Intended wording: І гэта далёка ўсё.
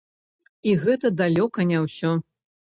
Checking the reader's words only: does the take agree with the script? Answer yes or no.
no